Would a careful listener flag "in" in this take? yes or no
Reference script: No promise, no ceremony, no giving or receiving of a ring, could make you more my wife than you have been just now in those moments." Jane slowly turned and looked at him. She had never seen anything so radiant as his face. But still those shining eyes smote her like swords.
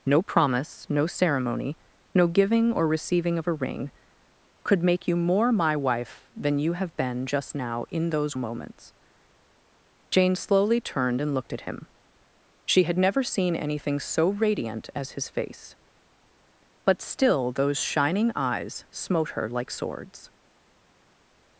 no